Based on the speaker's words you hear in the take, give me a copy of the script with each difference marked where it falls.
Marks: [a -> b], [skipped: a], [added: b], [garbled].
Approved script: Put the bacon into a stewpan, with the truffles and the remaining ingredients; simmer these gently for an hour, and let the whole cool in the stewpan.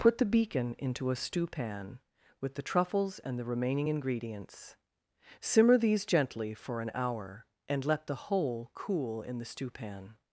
Put the [bacon -> beacon] into a stewpan, with the truffles and the remaining ingredients; simmer these gently for an hour, and let the whole cool in the stewpan.